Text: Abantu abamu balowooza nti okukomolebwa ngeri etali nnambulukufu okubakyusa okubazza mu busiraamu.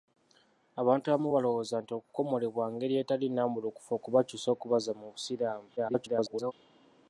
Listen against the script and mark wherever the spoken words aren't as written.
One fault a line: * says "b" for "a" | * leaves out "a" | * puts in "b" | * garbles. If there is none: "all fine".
* garbles